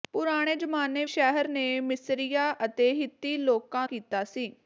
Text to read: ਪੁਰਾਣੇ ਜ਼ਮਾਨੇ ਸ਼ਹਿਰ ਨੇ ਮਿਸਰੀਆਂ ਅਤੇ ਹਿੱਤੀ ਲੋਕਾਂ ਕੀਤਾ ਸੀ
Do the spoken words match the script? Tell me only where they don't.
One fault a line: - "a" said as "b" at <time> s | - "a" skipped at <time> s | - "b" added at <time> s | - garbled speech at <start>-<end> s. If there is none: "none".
none